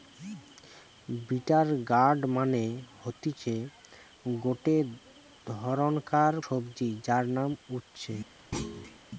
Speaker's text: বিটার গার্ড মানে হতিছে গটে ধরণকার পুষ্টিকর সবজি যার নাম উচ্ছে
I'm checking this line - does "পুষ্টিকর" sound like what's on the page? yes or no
no